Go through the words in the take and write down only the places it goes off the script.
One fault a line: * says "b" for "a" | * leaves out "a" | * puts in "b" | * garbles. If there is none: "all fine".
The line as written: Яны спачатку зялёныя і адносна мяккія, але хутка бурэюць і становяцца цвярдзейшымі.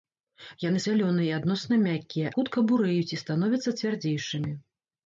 * leaves out "спачатку"
* leaves out "але"